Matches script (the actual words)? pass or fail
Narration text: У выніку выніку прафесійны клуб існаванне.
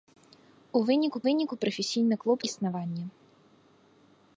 pass